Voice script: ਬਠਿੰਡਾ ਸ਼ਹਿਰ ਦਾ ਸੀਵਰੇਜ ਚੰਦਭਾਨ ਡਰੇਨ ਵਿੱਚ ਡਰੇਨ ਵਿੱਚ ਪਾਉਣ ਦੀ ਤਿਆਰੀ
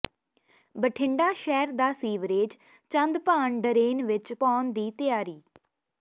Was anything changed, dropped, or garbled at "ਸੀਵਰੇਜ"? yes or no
no